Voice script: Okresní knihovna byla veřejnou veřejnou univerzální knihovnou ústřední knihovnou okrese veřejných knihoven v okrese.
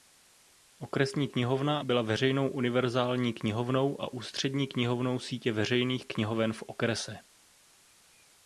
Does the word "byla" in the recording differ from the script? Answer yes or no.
no